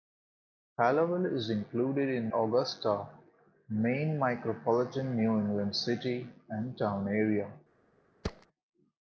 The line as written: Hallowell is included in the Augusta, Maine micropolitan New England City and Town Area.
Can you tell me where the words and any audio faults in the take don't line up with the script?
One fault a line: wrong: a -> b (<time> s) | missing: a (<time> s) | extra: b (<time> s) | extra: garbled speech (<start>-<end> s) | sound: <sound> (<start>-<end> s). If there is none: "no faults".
missing: the (2.3 s)
sound: thud (8.2-8.5 s)